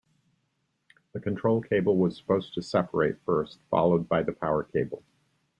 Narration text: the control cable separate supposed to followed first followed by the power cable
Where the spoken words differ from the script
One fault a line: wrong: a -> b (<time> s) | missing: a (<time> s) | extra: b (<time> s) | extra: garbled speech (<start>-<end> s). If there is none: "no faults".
wrong: separate -> was (1.9 s)
wrong: followed -> separate (2.6 s)